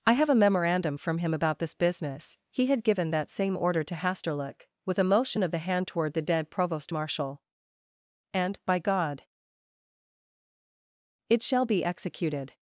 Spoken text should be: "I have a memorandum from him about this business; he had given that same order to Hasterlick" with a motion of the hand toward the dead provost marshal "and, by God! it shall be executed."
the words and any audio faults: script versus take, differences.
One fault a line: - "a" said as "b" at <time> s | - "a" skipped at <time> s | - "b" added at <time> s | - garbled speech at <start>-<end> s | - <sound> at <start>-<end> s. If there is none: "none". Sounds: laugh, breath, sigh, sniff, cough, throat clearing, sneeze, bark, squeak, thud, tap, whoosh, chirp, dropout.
none